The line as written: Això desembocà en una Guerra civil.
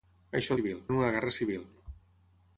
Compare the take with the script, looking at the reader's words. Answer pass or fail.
fail